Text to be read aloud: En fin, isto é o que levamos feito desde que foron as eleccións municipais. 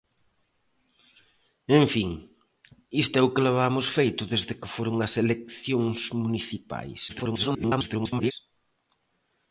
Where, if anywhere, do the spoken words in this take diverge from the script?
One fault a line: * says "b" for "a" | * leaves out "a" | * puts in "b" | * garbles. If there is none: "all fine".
* garbles